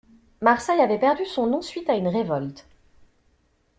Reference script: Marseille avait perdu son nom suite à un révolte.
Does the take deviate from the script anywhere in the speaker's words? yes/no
yes